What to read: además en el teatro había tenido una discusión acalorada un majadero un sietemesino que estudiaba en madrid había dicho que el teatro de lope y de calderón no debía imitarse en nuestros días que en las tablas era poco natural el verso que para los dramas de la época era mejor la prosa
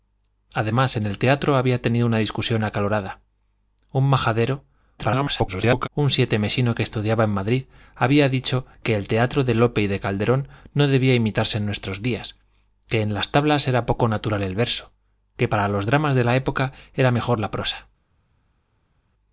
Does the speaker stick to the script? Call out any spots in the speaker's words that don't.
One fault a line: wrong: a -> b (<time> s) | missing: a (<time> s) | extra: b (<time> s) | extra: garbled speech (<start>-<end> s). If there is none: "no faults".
extra: garbled speech (5.0-5.9 s)